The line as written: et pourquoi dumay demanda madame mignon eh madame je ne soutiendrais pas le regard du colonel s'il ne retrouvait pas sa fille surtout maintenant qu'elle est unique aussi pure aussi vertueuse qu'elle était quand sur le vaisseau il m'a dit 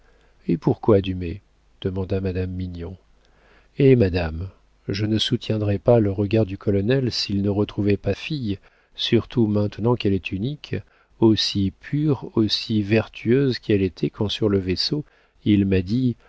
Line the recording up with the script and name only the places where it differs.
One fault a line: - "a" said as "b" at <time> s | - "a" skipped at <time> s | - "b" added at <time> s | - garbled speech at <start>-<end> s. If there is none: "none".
- "sa" skipped at 8.1 s